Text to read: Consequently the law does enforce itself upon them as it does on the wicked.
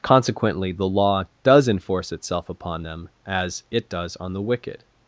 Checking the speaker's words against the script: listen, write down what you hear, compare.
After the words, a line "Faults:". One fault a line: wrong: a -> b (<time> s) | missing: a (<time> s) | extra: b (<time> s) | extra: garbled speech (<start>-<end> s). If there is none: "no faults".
Consequently the law does enforce itself upon them as it does on the wicked.
Faults:
no faults